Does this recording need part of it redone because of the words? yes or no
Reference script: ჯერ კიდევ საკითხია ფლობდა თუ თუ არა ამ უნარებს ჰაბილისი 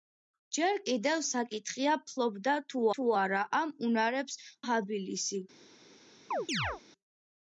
no